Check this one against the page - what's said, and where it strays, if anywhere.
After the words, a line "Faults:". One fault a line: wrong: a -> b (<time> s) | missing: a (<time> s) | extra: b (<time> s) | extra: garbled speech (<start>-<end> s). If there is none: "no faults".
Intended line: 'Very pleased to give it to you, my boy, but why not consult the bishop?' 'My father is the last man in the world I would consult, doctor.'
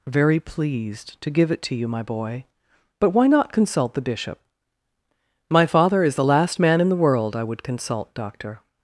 'Very pleased to give it to you, my boy, but why not consult the bishop?' 'My father is the last man in the world I would consult, doctor.'
Faults:
no faults